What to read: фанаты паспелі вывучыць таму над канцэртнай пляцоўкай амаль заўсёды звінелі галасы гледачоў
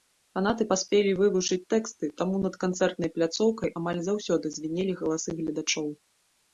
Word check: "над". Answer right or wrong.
right